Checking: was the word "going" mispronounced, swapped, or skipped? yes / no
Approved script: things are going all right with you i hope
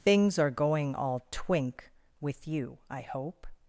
no